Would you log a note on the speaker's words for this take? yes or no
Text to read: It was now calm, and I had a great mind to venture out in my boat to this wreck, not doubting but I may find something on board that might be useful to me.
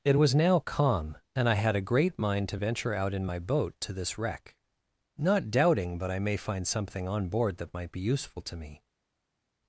no